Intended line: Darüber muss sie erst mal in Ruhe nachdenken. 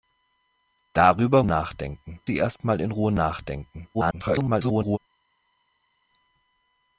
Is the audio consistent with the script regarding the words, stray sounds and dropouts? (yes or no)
no